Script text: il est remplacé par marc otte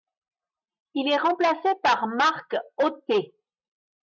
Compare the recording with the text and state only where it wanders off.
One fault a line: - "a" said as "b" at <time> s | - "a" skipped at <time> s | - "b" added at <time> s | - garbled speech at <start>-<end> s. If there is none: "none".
none